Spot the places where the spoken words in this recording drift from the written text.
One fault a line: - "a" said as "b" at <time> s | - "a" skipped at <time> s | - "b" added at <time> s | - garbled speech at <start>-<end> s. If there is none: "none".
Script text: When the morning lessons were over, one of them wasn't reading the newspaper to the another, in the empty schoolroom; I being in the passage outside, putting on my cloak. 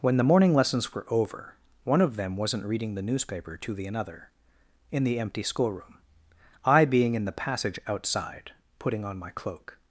none